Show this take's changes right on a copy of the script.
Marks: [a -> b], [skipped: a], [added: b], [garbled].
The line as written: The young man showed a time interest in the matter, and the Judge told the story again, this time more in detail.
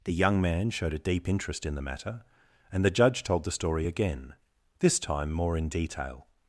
The young man showed a [time -> deep] interest in the matter, and the Judge told the story again, this time more in detail.